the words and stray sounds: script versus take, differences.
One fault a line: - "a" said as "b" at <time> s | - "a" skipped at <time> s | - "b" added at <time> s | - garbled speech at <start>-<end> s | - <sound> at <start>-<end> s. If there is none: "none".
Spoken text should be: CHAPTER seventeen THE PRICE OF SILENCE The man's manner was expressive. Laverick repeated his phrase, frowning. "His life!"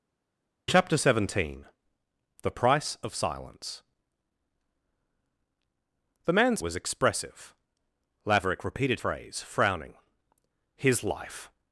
- "manner" skipped at 6.6 s
- "his" skipped at 9.0 s